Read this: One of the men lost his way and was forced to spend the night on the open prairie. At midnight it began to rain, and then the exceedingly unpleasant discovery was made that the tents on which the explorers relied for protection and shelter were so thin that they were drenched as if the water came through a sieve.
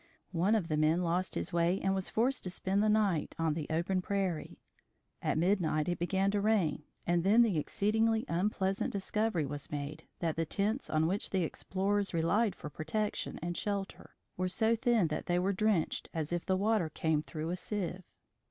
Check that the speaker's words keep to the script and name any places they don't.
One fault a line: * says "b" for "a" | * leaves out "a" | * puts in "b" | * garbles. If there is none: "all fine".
all fine